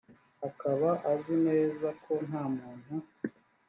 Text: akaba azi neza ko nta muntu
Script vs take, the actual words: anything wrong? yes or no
no